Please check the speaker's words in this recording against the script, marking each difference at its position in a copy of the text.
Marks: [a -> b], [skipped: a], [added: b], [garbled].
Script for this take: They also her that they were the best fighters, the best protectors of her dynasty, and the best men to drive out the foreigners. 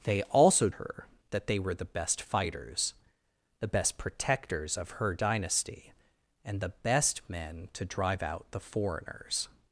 They also her that they were the best fighters, the best protectors of her dynasty, and the best men to drive out the foreigners.